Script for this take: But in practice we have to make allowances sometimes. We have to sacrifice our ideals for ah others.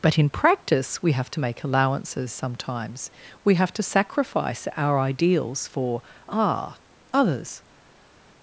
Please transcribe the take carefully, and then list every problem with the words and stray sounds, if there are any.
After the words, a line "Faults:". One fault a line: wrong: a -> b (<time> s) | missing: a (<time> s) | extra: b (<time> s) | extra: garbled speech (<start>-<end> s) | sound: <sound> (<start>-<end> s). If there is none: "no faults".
But in practice we have to make allowances sometimes. We have to sacrifice our ideals for ah others.
Faults:
no faults